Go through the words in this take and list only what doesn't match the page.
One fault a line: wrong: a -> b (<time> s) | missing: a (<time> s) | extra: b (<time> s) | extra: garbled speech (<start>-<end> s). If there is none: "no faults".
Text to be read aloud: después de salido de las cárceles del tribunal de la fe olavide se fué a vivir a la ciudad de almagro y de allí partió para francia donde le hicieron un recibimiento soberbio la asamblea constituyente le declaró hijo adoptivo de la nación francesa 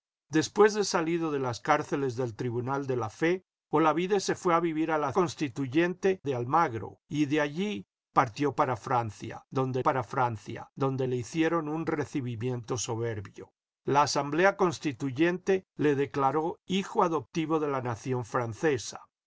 wrong: ciudad -> constituyente (5.1 s)
extra: para francia donde (9.8 s)